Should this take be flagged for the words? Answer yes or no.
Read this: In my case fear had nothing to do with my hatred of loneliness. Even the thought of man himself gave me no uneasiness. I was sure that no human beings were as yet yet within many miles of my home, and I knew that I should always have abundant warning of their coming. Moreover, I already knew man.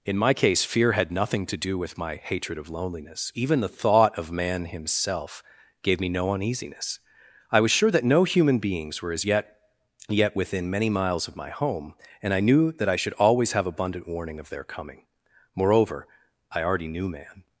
no